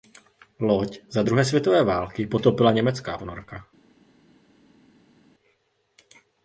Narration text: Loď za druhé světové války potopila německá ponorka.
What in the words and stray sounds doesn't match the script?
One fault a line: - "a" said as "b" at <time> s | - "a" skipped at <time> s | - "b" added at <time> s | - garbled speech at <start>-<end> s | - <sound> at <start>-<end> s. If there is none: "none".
none